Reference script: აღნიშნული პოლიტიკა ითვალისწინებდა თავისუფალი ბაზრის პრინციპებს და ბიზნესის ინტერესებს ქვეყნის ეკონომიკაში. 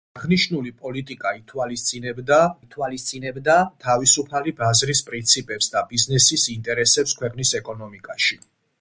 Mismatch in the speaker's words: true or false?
true